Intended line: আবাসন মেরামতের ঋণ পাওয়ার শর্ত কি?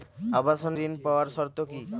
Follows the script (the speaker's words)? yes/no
no